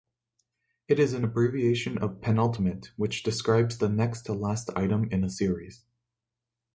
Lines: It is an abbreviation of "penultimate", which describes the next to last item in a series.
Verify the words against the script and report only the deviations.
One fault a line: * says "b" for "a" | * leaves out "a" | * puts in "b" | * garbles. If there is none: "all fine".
all fine